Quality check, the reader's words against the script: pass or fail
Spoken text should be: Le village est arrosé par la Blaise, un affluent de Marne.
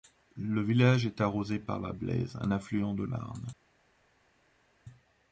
pass